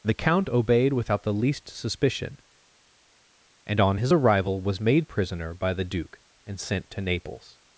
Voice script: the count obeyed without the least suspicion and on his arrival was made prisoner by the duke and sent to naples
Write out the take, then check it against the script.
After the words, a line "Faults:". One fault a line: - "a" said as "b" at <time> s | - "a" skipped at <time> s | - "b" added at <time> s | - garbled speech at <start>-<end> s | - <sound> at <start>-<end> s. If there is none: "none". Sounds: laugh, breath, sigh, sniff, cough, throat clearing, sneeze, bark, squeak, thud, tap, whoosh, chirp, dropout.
the count obeyed without the least suspicion and on his arrival was made prisoner by the duke and sent to naples
Faults:
none